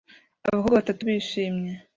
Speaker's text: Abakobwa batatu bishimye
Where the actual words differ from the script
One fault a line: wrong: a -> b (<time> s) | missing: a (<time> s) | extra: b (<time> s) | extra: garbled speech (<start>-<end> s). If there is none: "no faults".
no faults